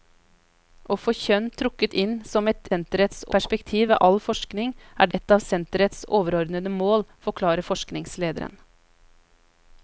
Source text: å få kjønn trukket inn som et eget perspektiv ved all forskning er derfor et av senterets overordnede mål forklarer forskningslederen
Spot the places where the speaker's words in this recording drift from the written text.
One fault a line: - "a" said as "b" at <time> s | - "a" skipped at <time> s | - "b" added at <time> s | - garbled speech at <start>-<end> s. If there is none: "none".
- "eget" said as "senterets" at 2.7 s
- "derfor" skipped at 5.1 s